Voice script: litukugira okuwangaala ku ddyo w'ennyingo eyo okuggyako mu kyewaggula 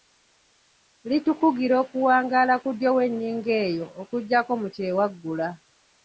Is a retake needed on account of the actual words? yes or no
no